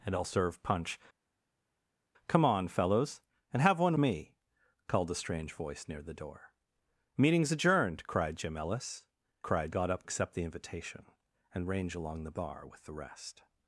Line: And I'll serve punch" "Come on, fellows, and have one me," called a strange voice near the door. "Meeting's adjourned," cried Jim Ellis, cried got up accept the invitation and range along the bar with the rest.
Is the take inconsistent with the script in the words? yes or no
no